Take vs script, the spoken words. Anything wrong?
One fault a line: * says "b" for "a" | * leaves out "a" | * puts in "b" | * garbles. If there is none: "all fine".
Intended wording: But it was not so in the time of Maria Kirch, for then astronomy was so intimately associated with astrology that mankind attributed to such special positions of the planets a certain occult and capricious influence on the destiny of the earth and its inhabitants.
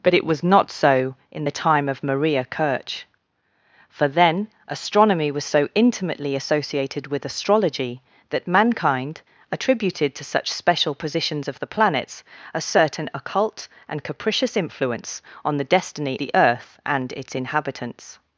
* leaves out "of"